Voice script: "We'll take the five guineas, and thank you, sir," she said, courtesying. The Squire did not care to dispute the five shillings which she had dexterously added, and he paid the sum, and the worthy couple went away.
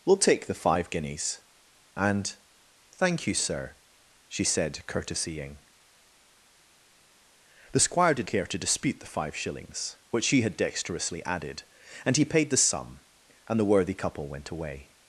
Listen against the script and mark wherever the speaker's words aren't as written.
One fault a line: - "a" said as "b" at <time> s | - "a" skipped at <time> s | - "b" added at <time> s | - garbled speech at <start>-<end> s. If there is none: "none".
- "not" skipped at 8.3 s